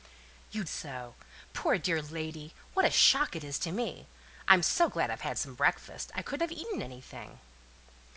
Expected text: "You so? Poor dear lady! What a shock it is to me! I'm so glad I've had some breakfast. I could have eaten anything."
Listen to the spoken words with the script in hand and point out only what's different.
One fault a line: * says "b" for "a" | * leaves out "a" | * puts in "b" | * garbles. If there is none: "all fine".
all fine